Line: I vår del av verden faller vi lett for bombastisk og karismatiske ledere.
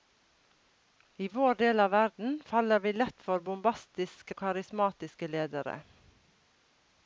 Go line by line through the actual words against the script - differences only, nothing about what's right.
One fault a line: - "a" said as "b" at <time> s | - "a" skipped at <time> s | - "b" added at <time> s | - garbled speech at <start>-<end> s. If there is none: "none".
none